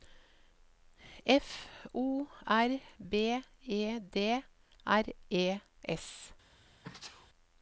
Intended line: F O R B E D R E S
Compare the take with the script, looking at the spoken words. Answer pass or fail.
pass